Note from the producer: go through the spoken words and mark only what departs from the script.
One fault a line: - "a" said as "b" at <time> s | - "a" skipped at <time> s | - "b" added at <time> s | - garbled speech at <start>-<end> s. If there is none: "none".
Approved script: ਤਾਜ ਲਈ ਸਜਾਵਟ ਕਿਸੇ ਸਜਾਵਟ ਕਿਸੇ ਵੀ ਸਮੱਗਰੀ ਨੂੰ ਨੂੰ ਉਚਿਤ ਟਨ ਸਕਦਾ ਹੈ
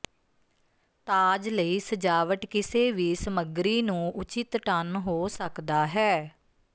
- "ਸਜਾਵਟ ਕਿਸੇ" skipped at 2.9 s
- "ਨੂੰ" skipped at 4.1 s
- "ਹੋ" added at 5.0 s